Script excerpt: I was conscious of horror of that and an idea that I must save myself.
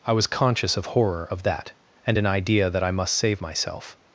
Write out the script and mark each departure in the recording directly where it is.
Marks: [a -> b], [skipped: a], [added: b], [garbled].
I was conscious of horror of that and an idea that I must save myself.